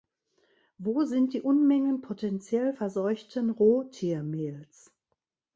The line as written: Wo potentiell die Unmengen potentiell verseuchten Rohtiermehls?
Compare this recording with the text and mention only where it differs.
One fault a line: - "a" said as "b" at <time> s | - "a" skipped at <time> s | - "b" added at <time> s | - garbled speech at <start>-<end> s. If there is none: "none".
- "potentiell" said as "sind" at 1.0 s